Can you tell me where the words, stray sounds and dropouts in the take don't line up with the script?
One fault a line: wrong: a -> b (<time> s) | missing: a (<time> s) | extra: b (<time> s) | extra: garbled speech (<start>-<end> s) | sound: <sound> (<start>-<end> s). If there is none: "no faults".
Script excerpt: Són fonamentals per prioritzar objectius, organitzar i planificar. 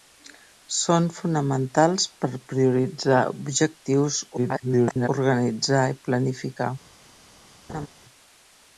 extra: garbled speech (4.4-5.1 s)
sound: laugh (7.7-7.9 s)